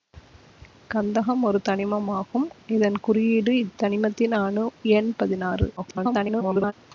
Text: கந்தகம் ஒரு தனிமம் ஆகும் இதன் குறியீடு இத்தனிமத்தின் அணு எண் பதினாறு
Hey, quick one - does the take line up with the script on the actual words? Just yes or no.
no